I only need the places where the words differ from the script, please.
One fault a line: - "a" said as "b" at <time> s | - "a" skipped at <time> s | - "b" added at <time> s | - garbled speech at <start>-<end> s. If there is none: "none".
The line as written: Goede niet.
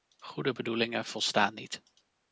- "bedoelingen volstaan" added at 0.5 s